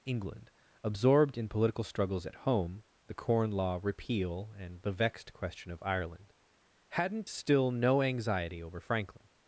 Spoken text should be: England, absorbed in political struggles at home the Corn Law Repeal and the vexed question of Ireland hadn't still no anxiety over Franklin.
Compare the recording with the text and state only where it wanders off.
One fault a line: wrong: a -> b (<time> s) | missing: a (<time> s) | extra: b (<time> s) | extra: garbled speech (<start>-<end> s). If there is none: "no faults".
no faults